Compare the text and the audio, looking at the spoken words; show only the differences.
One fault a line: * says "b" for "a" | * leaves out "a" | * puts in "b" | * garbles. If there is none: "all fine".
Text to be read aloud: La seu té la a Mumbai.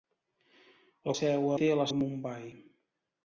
all fine